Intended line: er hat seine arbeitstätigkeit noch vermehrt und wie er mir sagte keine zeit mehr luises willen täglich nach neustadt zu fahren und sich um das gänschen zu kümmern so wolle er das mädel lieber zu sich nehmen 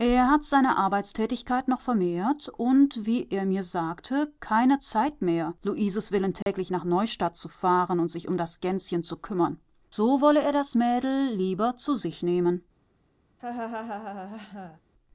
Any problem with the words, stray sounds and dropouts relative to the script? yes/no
yes